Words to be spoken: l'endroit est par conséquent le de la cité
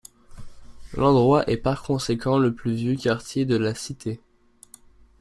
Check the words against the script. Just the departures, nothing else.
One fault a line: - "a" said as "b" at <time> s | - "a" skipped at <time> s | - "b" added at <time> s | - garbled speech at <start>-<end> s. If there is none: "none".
- "plus vieux quartier" added at 2.5 s